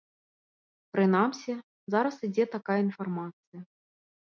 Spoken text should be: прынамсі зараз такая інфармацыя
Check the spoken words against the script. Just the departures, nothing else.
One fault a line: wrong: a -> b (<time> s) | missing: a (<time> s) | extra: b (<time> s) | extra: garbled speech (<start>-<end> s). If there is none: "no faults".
extra: ідзе (2.3 s)